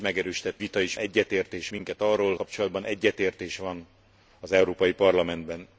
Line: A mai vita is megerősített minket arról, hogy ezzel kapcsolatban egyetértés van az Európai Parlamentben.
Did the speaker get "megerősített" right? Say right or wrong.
wrong